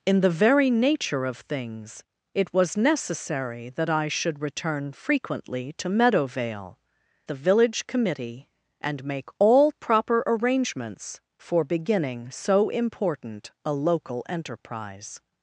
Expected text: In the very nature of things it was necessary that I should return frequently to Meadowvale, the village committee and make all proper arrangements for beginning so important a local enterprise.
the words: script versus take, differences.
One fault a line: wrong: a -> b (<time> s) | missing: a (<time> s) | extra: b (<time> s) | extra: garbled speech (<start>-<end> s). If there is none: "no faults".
no faults